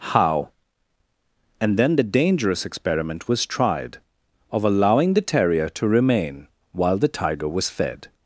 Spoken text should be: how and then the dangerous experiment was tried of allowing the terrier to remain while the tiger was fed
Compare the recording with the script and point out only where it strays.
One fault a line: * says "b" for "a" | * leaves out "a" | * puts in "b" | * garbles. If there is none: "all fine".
all fine